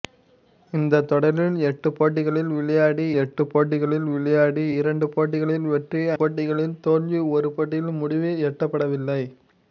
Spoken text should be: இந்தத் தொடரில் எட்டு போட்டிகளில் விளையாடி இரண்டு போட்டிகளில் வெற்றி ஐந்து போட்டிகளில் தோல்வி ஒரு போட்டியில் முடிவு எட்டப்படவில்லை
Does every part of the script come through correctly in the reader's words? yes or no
no